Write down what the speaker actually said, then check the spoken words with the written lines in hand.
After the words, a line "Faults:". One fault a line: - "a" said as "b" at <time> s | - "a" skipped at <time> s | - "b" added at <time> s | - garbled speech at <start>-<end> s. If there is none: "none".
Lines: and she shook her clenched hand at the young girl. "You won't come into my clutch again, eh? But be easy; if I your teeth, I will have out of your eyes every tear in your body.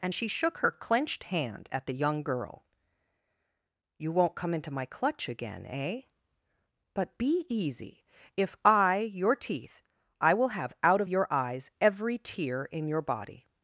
and she shook her clenched hand at the young girl. "You won't come into my clutch again, eh? But be easy; if I your teeth, I will have out of your eyes every tear in your body.
Faults:
none